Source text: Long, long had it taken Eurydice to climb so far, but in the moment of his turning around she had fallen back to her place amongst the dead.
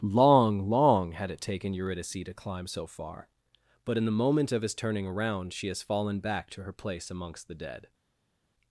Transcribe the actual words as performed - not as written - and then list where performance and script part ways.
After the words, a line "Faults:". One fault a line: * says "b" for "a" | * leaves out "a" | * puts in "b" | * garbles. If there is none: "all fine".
Long, long had it taken Eurydice to climb so far, but in the moment of his turning around she has fallen back to her place amongst the dead.
Faults:
* says "has" for "had"